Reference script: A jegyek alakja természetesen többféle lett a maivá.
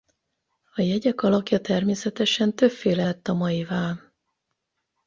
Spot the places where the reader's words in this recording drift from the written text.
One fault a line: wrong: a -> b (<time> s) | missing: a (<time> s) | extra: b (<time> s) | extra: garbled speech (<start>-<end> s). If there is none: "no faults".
no faults